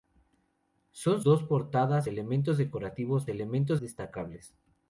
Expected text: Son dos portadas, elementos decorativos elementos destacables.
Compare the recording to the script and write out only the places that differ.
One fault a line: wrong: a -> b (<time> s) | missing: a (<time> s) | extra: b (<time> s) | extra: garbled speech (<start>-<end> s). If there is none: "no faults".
no faults